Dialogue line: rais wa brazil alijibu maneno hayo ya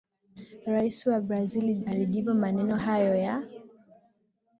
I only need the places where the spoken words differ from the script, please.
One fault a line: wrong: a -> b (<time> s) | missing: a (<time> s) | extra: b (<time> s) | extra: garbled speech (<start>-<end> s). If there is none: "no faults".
no faults